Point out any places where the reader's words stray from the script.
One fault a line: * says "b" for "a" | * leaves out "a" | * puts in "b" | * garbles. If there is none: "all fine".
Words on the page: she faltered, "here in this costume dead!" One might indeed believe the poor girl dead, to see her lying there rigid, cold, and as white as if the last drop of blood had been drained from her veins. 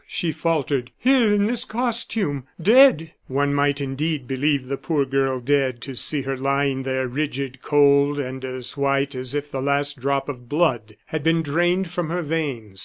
all fine